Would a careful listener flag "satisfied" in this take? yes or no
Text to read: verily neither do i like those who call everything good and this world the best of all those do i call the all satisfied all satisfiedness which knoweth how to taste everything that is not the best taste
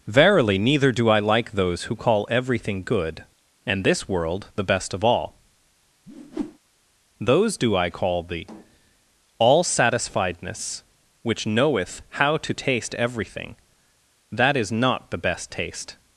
yes